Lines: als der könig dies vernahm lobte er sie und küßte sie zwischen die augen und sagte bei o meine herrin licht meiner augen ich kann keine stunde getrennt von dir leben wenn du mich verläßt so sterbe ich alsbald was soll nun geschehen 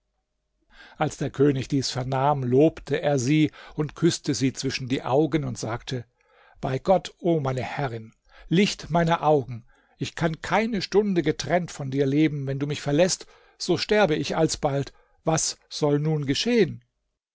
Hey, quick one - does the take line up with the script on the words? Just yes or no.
no